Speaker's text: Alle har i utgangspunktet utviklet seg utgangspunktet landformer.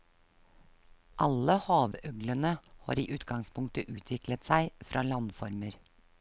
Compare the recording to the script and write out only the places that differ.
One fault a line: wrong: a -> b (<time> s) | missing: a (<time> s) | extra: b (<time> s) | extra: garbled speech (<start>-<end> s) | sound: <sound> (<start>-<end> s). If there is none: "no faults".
extra: havøglene (1.6 s)
wrong: utgangspunktet -> fra (4.9 s)